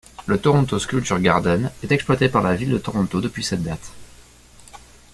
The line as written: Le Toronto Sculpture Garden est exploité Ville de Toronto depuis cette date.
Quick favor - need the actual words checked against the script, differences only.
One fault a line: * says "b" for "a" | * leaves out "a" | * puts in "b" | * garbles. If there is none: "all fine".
* puts in "par la"